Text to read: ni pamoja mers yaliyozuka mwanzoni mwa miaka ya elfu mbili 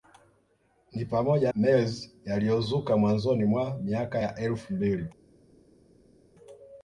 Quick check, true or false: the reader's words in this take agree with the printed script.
true